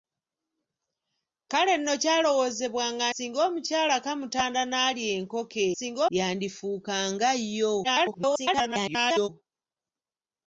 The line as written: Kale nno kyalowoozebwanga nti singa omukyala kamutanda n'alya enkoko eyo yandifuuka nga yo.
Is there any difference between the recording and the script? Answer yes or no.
yes